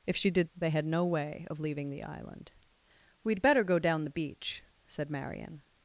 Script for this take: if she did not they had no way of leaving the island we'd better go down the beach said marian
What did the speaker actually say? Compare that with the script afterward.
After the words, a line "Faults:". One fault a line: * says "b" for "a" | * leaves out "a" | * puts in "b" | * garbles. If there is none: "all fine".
if she did they had no way of leaving the island we'd better go down the beach said marian
Faults:
* leaves out "not"